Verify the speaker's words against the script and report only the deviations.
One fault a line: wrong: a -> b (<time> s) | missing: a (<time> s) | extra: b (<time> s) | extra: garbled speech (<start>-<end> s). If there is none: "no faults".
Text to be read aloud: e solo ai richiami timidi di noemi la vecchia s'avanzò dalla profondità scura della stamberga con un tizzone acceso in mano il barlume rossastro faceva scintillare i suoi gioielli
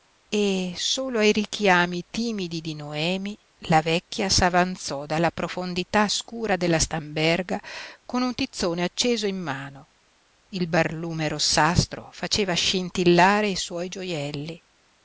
no faults